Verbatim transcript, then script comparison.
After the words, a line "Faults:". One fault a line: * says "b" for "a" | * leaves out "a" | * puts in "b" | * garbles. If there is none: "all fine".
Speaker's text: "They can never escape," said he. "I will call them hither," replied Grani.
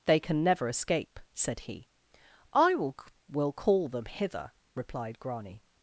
"They can never escape," said he. "I will will call them hither," replied Grani.
Faults:
* puts in "will"